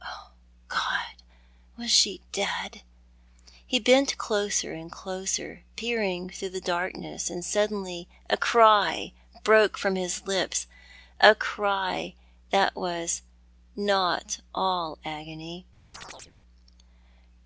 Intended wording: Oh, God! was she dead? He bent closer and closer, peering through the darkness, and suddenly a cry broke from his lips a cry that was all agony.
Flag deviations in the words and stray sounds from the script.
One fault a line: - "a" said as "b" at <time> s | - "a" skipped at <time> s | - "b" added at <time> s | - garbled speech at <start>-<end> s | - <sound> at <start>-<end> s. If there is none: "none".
- "not" added at 13.8 s
- chirp at 15.9-16.3 s